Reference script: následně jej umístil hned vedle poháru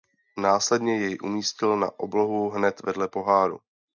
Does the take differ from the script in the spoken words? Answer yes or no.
yes